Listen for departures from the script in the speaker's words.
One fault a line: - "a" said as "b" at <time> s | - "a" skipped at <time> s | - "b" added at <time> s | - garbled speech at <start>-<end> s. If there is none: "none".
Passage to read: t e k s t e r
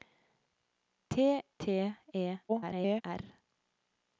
- "e k s" skipped at 1.4 s
- garbled speech at 2.5-3.0 s